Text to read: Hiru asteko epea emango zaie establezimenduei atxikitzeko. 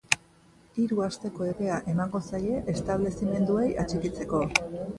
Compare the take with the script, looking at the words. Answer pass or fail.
pass